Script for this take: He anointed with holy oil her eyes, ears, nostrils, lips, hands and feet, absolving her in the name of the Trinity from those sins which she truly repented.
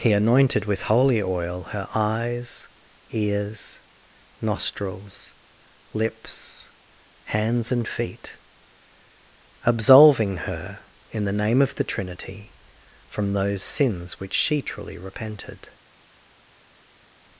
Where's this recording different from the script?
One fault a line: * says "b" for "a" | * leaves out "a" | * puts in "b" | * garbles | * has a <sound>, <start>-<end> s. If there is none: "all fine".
all fine